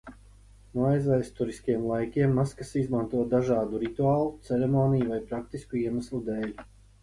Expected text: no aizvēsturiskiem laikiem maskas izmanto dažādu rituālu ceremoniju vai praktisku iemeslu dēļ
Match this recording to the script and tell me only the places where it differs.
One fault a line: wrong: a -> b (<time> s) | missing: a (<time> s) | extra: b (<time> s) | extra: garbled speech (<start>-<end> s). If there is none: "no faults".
no faults